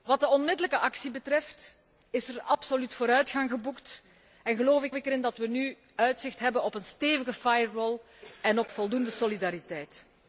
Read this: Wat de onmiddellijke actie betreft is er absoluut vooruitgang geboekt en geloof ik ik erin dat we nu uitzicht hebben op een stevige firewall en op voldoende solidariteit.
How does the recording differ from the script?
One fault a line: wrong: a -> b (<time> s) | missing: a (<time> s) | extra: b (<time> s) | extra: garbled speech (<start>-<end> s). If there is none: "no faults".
no faults